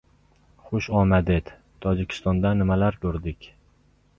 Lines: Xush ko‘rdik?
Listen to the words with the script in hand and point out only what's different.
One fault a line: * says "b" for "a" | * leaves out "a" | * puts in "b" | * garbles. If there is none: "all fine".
* puts in "omaded Tojikistonda nimalar"